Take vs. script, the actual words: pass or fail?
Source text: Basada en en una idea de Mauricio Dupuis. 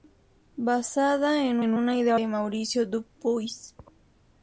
pass